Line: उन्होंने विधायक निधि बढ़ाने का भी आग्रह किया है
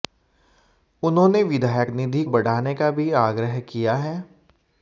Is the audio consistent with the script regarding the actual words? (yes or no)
yes